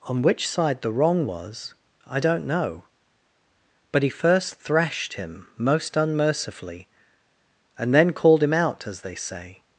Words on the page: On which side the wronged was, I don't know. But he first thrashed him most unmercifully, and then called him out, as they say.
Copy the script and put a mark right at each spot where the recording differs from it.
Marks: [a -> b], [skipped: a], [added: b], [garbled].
On which side the [wronged -> wrong] was, I don't know. But he first thrashed him most unmercifully, and then called him out, as they say.